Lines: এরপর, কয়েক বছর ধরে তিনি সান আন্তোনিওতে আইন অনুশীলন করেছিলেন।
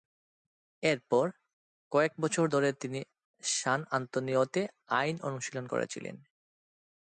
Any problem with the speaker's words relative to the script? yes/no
no